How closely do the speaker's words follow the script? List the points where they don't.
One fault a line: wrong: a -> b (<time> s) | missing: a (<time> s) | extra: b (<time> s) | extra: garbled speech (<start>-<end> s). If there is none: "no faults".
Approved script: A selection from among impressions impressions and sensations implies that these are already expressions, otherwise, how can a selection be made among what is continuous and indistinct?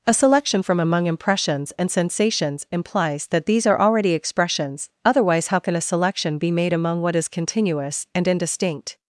missing: impressions (1.7 s)